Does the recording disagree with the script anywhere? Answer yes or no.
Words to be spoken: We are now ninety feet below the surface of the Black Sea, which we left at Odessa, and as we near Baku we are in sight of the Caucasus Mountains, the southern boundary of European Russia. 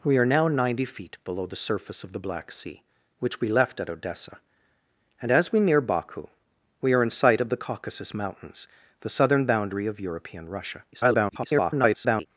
yes